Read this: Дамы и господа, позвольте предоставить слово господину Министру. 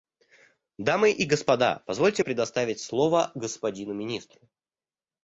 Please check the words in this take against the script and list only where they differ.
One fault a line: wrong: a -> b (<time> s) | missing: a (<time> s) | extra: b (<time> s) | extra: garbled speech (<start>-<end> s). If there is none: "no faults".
no faults